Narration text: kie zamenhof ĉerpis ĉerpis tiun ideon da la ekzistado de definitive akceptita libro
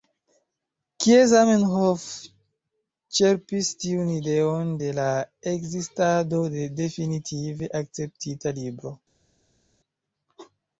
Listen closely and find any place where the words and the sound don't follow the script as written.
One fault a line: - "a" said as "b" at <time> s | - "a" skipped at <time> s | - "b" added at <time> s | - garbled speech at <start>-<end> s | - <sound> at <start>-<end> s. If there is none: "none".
- "ĉerpis" skipped at 3.7 s
- "da" said as "de" at 4.8 s